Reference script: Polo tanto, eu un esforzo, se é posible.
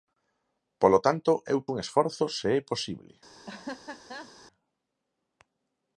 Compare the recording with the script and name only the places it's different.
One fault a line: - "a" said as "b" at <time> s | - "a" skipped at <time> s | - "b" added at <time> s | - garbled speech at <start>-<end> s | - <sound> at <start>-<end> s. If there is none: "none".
- laugh at 3.5-4.3 s